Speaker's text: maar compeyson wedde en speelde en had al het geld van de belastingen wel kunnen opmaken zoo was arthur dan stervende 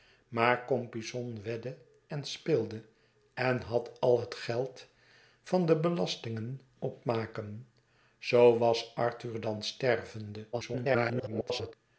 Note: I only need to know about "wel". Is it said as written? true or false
false